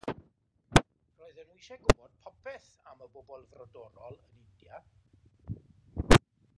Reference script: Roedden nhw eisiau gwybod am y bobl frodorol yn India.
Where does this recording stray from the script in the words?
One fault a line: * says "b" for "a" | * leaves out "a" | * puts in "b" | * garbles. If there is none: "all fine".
* puts in "popeth"